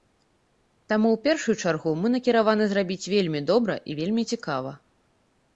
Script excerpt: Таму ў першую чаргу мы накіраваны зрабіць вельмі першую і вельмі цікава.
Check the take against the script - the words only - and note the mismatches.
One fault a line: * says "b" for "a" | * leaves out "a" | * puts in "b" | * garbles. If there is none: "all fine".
* says "добра" for "першую"